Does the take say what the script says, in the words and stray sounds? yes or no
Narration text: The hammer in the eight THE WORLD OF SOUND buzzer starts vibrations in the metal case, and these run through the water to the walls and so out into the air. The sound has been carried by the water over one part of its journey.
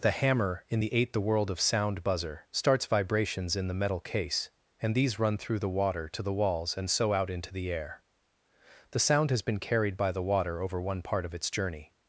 yes